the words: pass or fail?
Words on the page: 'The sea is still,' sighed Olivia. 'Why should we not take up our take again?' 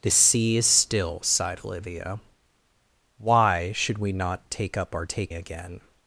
pass